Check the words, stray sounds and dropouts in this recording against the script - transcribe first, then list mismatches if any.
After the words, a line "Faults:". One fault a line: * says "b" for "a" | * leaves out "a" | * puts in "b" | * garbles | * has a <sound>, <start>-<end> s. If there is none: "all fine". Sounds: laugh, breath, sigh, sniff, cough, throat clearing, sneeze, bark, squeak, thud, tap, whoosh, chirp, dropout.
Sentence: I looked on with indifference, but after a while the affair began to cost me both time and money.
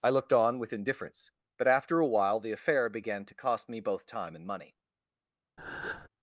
I looked on with indifference, but after a while the affair began to cost me both time and money.
Faults:
* has a breath, 5.6-6.1 s